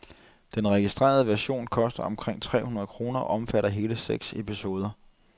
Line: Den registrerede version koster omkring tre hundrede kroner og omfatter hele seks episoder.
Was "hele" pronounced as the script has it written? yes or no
yes